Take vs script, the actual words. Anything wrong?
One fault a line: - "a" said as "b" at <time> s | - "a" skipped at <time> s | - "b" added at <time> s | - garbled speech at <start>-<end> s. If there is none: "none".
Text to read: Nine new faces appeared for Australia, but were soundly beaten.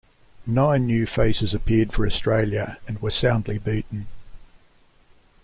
- "but" said as "and" at 2.9 s